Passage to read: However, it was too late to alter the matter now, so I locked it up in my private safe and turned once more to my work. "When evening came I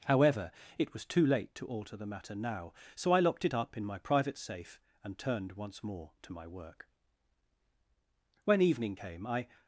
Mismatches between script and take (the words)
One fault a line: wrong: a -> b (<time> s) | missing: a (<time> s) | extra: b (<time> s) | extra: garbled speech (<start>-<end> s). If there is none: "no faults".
no faults